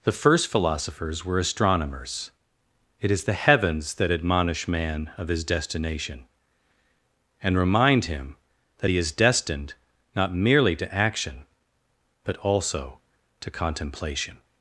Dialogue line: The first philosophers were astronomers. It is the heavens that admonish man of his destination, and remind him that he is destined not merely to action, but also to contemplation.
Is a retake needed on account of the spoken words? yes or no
no